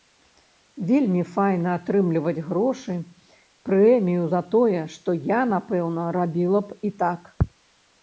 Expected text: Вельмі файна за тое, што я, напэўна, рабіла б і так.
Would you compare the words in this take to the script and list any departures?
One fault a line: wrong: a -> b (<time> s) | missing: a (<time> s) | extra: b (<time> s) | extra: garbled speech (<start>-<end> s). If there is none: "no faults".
extra: атрымліваць грошы прэмію (1.8 s)